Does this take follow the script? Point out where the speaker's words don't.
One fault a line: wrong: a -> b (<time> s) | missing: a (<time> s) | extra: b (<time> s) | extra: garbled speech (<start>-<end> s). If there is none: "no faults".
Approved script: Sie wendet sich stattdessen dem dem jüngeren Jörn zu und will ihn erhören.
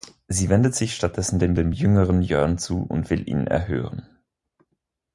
no faults